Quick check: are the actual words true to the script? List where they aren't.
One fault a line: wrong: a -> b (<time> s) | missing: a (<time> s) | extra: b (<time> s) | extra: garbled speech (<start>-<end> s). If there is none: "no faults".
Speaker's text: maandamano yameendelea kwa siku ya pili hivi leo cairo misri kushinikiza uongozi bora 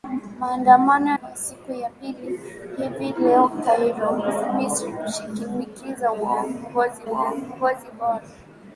missing: yameendelea (1.1 s)
extra: uongozi (7.0 s)